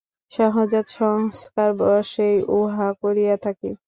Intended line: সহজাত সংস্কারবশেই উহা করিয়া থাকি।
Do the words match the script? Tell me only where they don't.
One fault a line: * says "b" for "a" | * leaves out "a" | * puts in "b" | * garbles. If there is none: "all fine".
all fine